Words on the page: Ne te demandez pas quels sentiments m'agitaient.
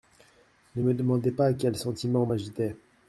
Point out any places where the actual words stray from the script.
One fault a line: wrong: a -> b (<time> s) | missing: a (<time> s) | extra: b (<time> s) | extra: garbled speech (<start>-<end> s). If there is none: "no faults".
wrong: te -> me (0.8 s)